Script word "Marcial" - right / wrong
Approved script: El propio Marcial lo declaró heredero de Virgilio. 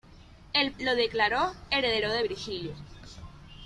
wrong